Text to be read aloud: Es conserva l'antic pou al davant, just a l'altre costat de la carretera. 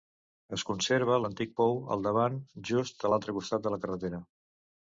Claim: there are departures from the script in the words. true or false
false